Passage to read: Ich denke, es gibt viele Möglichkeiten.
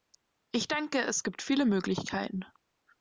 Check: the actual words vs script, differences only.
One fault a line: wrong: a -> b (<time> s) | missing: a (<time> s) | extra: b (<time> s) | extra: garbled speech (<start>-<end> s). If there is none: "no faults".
no faults